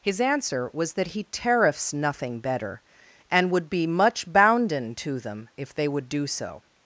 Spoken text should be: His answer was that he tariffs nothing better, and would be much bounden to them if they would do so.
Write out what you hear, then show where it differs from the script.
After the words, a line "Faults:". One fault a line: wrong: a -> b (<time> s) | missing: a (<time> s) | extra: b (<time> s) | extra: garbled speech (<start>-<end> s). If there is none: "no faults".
His answer was that he tariffs nothing better, and would be much bounden to them if they would do so.
Faults:
no faults